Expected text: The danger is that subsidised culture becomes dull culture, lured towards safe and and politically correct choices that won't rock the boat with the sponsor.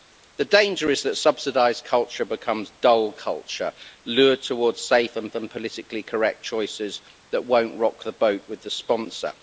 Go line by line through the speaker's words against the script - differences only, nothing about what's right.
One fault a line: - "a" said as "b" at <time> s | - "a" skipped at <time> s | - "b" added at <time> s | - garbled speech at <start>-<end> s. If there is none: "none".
none